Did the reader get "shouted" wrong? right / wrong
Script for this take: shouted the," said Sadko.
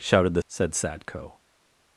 right